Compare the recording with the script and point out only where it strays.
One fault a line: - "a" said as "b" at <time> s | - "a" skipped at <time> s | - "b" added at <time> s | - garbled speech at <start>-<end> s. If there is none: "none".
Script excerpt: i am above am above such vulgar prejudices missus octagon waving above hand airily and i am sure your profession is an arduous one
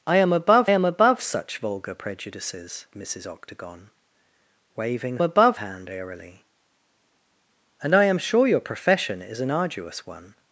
none